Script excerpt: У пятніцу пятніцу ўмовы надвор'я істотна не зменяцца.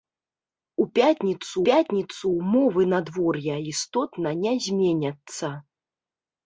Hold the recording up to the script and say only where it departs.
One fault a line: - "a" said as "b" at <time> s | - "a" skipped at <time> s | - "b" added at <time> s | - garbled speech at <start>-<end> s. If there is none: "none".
none